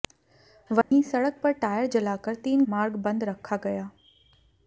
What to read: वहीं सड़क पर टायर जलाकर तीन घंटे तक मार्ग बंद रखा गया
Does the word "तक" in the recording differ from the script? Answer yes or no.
yes